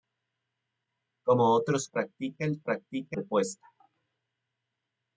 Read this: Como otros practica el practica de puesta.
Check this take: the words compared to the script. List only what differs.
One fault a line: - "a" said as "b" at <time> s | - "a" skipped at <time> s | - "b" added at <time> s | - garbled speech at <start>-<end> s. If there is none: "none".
none